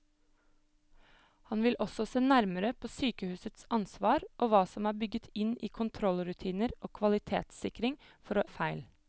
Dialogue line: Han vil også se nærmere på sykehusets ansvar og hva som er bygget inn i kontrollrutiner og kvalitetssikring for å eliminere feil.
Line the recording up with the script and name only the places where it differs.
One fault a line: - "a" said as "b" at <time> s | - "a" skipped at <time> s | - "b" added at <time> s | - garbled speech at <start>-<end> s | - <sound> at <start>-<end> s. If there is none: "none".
- "eliminere" skipped at 8.4 s